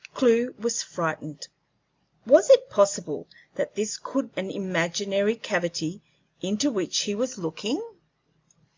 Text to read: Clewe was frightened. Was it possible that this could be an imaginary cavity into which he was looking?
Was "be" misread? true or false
true